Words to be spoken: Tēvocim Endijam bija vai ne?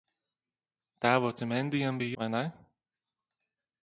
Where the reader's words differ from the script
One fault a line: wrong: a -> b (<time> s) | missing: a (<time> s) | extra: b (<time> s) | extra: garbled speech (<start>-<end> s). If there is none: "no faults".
no faults